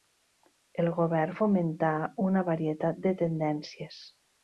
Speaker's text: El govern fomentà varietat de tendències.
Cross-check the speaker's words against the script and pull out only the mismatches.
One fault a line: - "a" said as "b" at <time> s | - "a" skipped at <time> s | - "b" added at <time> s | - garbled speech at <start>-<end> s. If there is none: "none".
- "una" added at 2.3 s